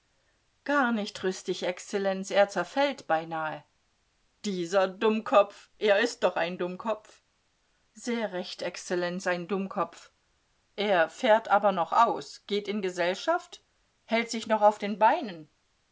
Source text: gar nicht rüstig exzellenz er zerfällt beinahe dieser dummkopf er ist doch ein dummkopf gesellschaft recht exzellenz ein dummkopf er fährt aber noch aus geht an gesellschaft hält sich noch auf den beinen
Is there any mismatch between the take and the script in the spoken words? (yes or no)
yes